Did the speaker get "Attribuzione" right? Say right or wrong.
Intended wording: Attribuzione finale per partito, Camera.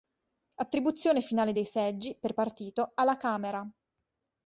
right